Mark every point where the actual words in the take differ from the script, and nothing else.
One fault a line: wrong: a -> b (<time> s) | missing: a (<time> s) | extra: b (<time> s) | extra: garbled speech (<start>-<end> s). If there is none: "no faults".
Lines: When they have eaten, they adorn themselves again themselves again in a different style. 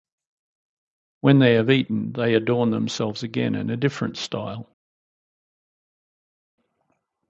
missing: themselves again (3.5 s)